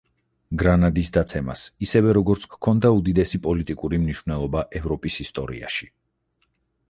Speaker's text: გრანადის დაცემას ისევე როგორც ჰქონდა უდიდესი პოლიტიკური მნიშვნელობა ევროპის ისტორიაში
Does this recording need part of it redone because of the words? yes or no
no